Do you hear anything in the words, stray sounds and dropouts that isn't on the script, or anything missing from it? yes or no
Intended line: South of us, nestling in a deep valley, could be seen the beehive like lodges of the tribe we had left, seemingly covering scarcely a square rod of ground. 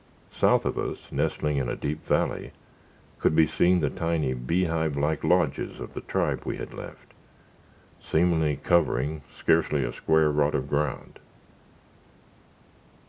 yes